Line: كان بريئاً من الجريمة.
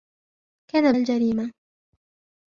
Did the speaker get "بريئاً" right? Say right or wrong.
wrong